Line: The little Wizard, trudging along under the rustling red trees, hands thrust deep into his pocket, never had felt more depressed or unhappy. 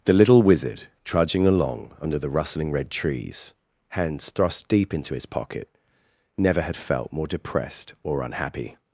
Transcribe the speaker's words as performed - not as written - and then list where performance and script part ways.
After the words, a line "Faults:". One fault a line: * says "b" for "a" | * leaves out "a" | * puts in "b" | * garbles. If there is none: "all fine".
The little Wizard, trudging along under the rustling red trees, hands thrust deep into his pocket, never had felt more depressed or unhappy.
Faults:
all fine